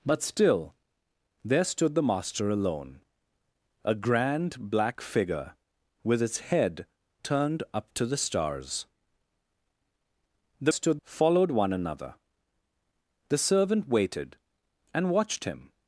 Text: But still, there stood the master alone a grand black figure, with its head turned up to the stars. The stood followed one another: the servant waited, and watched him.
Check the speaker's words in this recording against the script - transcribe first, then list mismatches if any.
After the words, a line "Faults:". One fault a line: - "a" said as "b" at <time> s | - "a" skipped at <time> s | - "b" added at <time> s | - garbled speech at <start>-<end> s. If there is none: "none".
But still, there stood the master alone a grand black figure, with its head turned up to the stars. The stood followed one another: the servant waited, and watched him.
Faults:
none